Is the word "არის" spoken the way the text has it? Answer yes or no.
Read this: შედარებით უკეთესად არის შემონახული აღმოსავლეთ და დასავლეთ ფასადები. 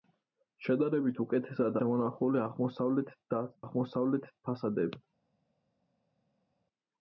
no